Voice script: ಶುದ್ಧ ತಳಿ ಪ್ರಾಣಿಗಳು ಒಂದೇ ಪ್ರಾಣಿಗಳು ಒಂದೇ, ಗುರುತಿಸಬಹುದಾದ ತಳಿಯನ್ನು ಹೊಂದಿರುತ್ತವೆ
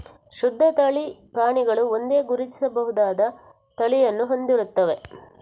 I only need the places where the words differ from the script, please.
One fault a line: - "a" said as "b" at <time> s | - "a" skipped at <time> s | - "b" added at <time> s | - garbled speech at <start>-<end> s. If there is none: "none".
- "ಪ್ರಾಣಿಗಳು ಒಂದೇ" skipped at 2.2 s